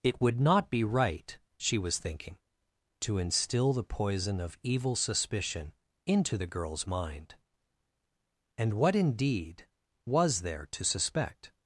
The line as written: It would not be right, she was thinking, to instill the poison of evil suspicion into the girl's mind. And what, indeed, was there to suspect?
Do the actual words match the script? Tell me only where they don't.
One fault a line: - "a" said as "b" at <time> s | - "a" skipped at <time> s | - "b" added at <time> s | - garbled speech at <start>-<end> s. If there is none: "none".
none